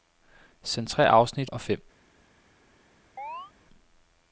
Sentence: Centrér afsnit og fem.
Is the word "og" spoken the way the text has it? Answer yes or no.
yes